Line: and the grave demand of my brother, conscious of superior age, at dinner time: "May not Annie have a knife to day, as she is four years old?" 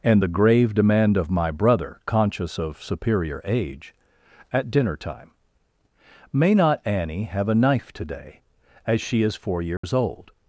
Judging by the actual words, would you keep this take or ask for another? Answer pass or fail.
pass